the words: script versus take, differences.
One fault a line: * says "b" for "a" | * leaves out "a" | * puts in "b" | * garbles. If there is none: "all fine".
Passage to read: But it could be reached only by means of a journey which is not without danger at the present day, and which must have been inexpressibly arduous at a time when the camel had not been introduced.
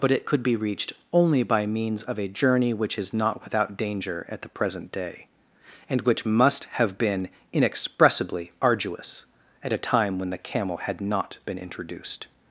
all fine